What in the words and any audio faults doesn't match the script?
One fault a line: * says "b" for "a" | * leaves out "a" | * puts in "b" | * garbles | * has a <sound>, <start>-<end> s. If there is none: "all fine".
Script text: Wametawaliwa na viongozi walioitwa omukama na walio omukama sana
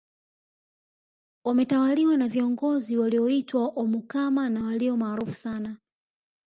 * says "maarufu" for "omukama"